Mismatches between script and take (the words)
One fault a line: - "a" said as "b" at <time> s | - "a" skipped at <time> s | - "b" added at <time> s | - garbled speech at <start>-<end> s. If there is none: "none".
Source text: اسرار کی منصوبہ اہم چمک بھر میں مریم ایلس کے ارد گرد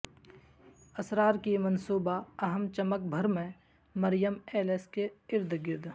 none